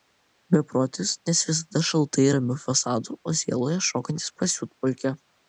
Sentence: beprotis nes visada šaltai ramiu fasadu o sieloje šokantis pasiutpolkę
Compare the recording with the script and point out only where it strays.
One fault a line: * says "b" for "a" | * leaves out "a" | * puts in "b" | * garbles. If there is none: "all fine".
all fine